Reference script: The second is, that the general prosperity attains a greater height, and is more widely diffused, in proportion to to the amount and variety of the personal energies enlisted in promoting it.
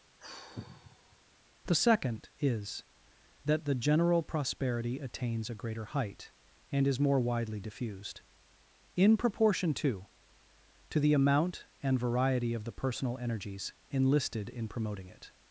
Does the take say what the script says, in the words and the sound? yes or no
no